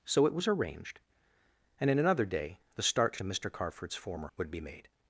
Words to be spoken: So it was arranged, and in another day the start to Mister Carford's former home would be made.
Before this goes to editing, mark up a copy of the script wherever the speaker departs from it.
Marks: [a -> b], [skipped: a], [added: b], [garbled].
So it was arranged, and in another day the start [skipped: to] Mister Carford's former [skipped: home] would be made.